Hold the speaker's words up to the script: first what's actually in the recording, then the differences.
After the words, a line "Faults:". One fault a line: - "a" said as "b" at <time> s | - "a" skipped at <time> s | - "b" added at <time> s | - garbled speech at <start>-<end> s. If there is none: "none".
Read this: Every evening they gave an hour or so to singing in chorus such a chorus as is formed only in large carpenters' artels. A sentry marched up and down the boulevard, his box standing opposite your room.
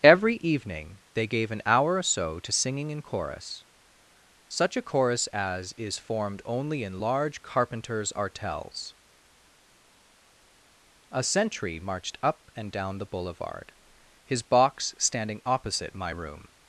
Every evening they gave an hour or so to singing in chorus such a chorus as is formed only in large carpenters' artels. A sentry marched up and down the boulevard, his box standing opposite my room.
Faults:
- "your" said as "my" at 15.9 s